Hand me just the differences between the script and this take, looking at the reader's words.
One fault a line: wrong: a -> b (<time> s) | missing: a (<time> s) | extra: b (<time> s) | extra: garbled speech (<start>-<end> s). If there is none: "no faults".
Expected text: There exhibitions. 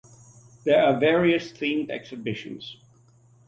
extra: are various themed (0.8 s)